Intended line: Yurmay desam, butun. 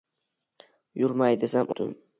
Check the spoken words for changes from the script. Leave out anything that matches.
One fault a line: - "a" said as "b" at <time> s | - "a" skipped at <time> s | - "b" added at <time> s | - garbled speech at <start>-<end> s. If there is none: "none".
none